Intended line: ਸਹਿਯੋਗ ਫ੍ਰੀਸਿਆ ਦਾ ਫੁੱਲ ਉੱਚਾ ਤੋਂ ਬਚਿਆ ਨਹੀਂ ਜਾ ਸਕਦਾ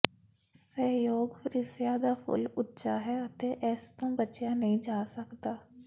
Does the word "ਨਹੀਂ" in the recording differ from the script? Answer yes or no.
no